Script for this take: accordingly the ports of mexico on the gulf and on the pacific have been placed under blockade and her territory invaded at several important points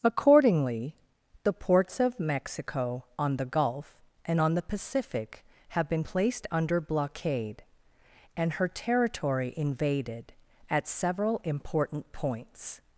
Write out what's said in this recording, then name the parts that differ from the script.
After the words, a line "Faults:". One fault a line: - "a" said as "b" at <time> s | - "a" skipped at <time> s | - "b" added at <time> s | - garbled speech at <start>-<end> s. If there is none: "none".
accordingly the ports of mexico on the gulf and on the pacific have been placed under blockade and her territory invaded at several important points
Faults:
none